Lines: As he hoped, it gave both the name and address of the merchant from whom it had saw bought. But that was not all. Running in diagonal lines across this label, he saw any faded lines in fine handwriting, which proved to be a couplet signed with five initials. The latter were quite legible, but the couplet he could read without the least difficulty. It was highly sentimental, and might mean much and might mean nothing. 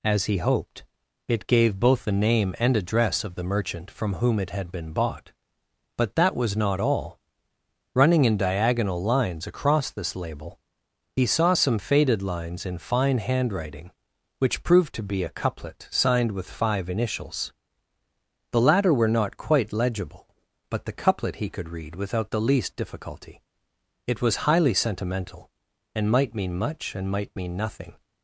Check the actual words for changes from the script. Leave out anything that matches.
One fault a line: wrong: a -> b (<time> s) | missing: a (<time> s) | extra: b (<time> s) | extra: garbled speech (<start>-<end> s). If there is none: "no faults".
wrong: saw -> been (4.7 s)
wrong: any -> some (11.5 s)
extra: not (19.1 s)